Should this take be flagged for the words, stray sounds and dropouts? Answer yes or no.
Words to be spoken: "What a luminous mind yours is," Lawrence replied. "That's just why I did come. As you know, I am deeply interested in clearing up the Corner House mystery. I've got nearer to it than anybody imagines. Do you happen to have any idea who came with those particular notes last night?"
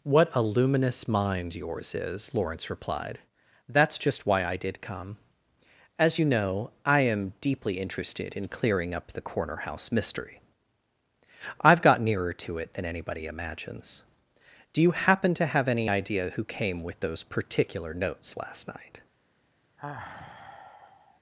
yes